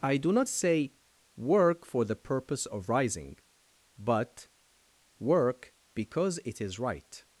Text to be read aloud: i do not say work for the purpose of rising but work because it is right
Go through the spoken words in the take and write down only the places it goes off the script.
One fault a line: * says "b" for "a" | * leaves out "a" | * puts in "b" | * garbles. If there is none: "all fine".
all fine